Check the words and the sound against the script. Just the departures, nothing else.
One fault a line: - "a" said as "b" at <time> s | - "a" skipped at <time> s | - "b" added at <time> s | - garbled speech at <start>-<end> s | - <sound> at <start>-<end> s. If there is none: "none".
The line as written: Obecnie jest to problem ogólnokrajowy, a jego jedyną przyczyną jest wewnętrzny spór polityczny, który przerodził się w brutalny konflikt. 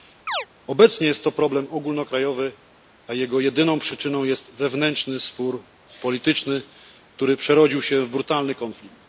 - chirp at 0.3-0.5 s